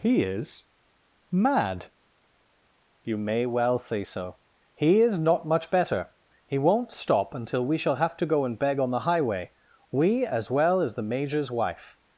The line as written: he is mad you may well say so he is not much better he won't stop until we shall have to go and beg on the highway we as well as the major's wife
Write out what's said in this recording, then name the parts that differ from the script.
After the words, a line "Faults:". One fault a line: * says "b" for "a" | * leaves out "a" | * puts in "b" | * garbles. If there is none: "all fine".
he is mad you may well say so he is not much better he won't stop until we shall have to go and beg on the highway we as well as the major's wife
Faults:
all fine